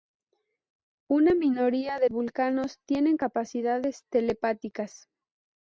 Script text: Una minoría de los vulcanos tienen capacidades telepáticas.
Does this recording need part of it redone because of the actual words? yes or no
yes